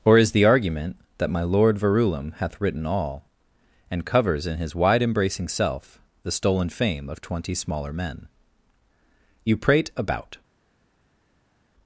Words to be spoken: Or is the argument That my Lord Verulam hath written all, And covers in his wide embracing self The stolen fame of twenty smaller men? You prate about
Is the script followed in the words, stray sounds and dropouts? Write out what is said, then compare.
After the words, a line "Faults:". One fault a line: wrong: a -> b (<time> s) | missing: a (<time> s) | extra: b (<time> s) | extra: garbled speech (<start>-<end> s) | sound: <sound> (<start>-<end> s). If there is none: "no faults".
Or is the argument That my Lord Verulam hath written all, And covers in his wide embracing self The stolen fame of twenty smaller men? You prate about
Faults:
no faults